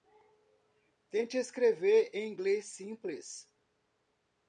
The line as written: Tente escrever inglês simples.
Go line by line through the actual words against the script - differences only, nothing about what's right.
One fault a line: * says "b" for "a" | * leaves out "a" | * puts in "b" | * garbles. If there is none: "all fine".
* puts in "em"